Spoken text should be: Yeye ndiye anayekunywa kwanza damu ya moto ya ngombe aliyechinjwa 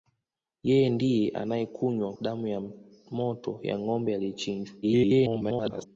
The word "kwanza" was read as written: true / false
false